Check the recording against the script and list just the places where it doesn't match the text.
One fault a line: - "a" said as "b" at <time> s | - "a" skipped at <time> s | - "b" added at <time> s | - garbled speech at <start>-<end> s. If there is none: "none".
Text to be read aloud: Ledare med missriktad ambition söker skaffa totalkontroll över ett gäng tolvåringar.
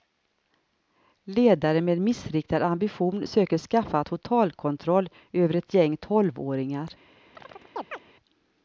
none